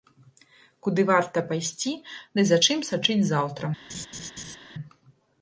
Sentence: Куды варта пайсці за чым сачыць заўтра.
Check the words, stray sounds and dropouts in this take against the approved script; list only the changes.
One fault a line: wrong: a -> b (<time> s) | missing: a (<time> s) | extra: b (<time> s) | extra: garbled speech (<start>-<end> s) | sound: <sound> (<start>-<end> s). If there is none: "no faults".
extra: ды (2.4 s)
sound: laugh (3.9-4.6 s)